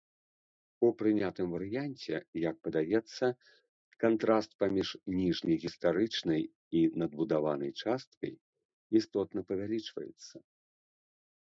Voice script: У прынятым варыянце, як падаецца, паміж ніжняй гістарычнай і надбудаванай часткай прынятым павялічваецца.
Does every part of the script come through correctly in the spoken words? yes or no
no